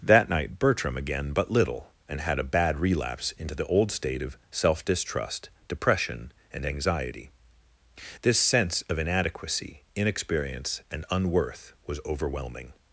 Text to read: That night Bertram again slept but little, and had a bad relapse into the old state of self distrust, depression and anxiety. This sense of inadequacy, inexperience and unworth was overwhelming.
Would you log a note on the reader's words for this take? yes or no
yes